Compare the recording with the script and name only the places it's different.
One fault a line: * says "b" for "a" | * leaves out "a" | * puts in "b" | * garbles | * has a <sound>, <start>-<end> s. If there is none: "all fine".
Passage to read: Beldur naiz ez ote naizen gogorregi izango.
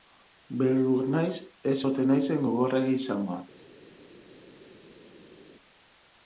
all fine